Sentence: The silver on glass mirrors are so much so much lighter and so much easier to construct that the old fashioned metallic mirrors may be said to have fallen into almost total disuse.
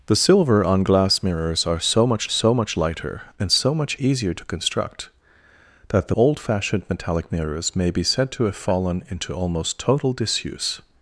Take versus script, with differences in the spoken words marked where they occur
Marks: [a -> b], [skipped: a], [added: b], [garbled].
The silver on glass mirrors are so much so much lighter and so much easier to construct that the old fashioned metallic mirrors may be said to have fallen into almost total disuse.